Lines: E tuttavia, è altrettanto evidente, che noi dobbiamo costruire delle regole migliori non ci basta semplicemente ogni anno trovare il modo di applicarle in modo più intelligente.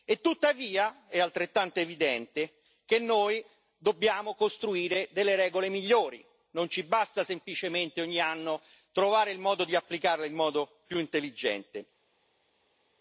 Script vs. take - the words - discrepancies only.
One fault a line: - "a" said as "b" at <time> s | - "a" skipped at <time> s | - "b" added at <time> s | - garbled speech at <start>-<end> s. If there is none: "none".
none